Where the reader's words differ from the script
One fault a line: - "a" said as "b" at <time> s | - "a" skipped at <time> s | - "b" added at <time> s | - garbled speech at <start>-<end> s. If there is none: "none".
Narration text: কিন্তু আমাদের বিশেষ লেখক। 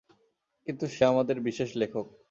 - "সে" added at 0.9 s